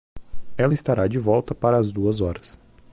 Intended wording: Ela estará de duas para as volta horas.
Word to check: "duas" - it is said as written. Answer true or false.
false